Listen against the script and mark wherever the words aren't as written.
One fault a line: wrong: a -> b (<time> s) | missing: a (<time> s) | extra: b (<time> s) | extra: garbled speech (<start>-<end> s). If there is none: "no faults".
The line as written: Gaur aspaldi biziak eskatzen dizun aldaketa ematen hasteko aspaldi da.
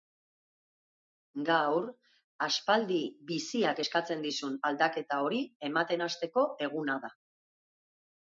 extra: hori (5.3 s)
wrong: aspaldi -> eguna (6.7 s)